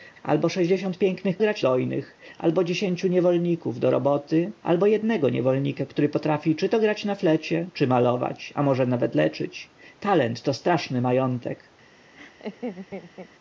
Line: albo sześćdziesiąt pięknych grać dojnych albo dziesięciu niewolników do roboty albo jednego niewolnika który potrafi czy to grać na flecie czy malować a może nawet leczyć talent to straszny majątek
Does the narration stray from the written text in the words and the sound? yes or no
yes